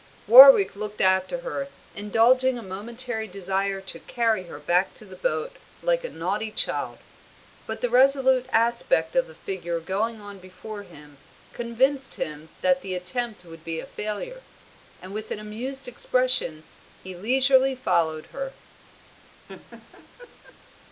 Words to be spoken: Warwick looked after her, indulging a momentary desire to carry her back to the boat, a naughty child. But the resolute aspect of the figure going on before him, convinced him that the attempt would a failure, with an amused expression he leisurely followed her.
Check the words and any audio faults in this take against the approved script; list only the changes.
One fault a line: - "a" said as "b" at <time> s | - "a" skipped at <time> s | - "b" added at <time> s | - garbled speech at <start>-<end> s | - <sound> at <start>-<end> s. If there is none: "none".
- "like" added at 5.8 s
- "be" added at 13.6 s
- "and" added at 15.0 s
- laugh at 19.5-20.6 s